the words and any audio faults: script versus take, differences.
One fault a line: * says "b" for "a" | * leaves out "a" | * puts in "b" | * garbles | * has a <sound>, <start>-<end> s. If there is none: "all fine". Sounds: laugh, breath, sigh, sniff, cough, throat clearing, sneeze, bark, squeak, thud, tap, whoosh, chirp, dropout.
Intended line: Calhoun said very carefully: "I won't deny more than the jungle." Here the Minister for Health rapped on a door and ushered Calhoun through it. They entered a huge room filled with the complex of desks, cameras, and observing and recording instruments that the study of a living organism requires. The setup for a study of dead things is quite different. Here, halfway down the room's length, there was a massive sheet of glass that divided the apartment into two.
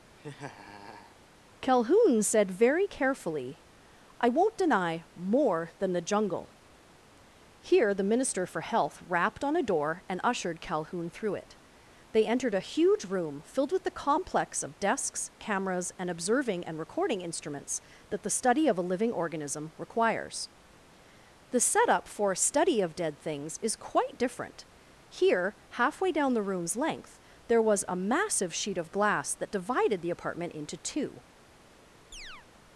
* has a laugh, 0.2-1.2 s
* has a chirp, 32.1-32.5 s